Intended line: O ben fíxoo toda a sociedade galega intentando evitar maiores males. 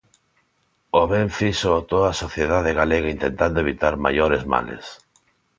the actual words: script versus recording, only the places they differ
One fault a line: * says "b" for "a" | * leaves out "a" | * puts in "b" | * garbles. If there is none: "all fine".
all fine